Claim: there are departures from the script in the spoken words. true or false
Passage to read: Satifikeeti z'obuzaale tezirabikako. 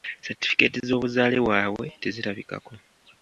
true